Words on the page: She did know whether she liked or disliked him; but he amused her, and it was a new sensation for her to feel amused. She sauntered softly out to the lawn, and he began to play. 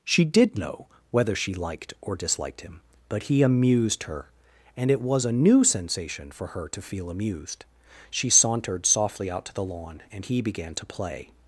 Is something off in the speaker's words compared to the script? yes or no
no